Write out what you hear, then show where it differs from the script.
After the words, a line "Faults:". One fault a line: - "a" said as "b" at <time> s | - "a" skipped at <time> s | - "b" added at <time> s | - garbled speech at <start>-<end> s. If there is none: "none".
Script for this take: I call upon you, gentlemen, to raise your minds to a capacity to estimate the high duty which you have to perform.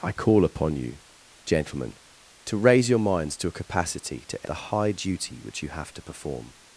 I call upon you, gentlemen, to raise your minds to a capacity to the high duty which you have to perform.
Faults:
- "estimate" skipped at 4.5 s